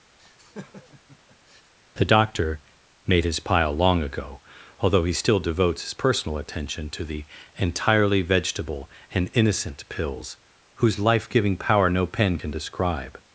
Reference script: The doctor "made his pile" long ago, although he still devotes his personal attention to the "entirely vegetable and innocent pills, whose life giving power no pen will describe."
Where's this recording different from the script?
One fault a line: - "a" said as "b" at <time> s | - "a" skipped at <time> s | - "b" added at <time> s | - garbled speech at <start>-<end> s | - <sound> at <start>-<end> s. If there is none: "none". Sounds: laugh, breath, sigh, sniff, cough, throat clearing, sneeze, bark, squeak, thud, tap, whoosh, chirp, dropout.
- laugh at 0.2-1.7 s
- "will" said as "can" at 12.4 s